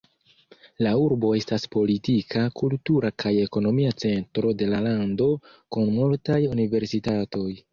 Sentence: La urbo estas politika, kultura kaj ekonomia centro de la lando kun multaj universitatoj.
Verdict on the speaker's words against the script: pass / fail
pass